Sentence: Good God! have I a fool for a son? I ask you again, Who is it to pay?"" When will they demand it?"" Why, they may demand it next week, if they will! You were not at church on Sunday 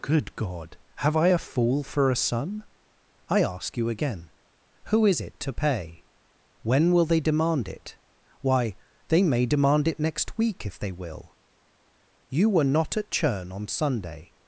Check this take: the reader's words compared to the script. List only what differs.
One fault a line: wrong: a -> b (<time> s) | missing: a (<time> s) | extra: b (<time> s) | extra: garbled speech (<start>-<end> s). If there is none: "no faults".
wrong: church -> churn (13.1 s)